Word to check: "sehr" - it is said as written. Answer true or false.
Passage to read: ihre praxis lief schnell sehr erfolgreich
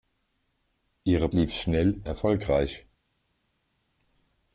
false